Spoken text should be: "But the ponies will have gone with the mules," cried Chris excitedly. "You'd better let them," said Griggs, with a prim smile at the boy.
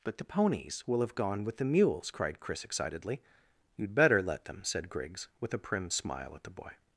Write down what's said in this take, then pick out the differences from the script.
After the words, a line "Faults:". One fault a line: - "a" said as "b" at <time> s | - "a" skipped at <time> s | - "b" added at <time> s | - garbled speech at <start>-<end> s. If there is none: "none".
"But the ponies will have gone with the mules," cried Chris excitedly. "You'd better let them," said Griggs, with a prim smile at the boy.
Faults:
none